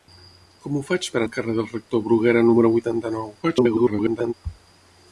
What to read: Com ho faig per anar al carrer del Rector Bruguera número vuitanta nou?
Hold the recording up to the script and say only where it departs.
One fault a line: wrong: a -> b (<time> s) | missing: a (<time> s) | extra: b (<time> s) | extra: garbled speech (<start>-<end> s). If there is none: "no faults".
missing: anar (1.2 s)
extra: garbled speech (3.4-4.3 s)